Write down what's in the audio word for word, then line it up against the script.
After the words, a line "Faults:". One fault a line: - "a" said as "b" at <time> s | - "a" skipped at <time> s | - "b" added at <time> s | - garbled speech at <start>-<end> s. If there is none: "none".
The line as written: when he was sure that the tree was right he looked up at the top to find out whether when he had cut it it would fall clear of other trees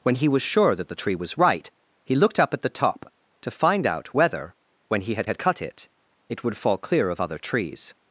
when he was sure that the tree was right he looked up at the top to find out whether when he had had cut it it would fall clear of other trees
Faults:
- "had" added at 5.2 s